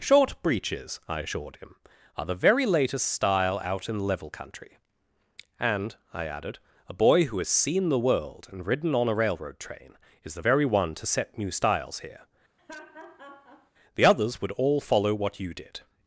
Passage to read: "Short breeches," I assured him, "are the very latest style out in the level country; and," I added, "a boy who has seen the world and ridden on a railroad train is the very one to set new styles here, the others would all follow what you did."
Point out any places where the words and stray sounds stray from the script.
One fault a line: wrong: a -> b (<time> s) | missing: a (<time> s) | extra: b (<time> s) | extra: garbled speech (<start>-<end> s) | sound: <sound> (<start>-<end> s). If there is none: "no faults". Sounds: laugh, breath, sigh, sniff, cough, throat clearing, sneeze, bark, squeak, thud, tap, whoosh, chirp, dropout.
missing: the (4.0 s)
sound: laugh (12.6-13.7 s)